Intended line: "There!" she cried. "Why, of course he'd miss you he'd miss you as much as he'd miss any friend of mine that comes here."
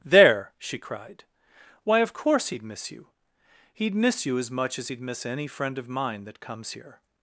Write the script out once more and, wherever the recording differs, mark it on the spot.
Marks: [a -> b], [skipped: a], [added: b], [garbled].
"There!" she cried. "Why, of course he'd miss you he'd miss you as much as he'd miss any friend of mine that comes here."